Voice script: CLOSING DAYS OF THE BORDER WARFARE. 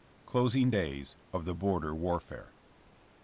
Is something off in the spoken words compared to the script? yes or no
no